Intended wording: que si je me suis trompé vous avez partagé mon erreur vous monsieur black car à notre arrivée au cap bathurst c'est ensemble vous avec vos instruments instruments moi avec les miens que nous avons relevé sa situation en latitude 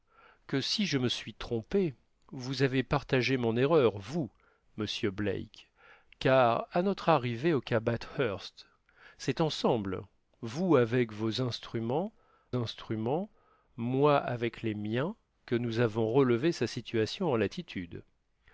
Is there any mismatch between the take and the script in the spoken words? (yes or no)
no